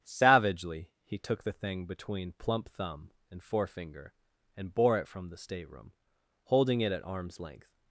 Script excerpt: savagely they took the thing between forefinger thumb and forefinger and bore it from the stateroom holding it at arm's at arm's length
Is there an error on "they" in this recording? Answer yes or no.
yes